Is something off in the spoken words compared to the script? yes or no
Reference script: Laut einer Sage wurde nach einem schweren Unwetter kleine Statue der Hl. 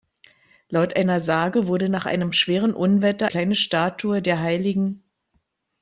no